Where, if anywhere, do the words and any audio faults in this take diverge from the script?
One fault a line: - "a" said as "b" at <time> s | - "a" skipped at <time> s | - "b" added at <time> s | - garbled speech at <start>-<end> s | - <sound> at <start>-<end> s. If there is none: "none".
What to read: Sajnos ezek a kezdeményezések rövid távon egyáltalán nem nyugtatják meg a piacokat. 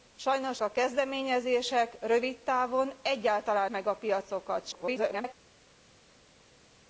- "ezek" skipped at 0.6 s
- "nem nyugtatják" skipped at 3.7 s
- garbled speech at 4.7-5.3 s